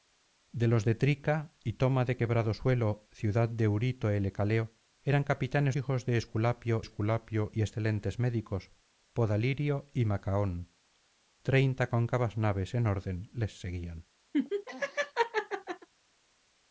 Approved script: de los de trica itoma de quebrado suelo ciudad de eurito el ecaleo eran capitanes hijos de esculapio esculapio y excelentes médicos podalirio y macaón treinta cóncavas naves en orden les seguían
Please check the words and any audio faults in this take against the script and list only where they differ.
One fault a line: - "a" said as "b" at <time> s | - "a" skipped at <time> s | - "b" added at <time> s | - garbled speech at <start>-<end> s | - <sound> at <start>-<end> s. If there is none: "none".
- laugh at 14.3-15.9 s